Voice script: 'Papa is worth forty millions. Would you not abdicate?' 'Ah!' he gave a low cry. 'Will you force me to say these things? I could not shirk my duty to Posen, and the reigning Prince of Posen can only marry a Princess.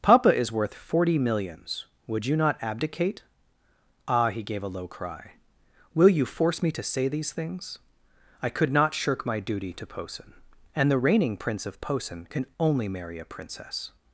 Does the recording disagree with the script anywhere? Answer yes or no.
no